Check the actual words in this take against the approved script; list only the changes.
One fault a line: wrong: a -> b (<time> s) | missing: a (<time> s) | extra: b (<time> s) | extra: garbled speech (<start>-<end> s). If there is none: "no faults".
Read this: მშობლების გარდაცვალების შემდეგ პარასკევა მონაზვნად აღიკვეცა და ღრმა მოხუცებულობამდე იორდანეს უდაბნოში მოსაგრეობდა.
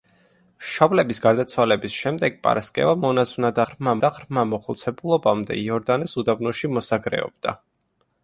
wrong: აღიკვეცა -> ღრმა (3.7 s)